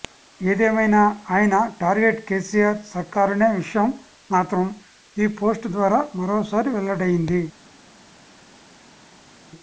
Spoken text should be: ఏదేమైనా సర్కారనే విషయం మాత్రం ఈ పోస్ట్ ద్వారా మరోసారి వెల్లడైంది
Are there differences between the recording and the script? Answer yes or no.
yes